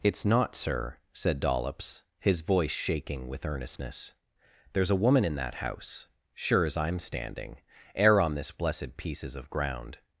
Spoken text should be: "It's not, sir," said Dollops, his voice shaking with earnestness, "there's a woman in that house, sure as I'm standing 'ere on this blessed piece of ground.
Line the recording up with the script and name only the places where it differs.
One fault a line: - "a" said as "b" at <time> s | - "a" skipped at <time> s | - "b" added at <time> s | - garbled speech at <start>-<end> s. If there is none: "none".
- "piece" said as "pieces" at 9.0 s